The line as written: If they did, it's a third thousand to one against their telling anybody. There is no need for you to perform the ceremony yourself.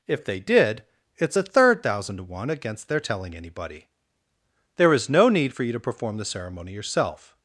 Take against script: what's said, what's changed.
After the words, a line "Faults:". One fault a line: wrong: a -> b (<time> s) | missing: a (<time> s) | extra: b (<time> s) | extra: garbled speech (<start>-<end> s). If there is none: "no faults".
If they did, it's a third thousand to one against their telling anybody. There is no need for you to perform the ceremony yourself.
Faults:
no faults